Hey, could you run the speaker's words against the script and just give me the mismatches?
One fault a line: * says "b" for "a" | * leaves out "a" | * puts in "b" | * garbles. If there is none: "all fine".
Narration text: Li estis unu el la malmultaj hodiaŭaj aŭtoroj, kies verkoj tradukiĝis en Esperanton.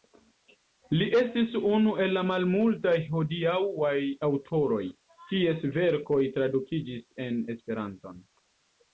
all fine